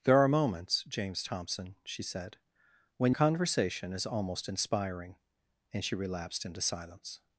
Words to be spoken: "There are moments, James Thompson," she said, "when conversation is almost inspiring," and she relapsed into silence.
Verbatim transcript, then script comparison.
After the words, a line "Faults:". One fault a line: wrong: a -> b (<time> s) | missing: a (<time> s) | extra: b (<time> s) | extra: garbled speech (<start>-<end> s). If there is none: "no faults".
"There are moments, James Thompson," she said, "when conversation is almost inspiring," and she relapsed into silence.
Faults:
no faults